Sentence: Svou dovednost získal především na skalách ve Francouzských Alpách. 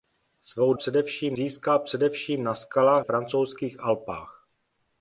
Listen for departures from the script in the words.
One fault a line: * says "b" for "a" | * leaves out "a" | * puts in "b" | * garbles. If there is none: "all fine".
* says "především" for "dovednost"
* leaves out "ve"